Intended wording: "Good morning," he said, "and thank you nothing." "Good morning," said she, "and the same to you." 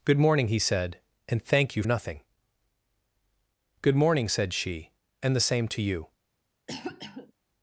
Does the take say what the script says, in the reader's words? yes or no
yes